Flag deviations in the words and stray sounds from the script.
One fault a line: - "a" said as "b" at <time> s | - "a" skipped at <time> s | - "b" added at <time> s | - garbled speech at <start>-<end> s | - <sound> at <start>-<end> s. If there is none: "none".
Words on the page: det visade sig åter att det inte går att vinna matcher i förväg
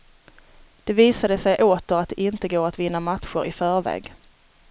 none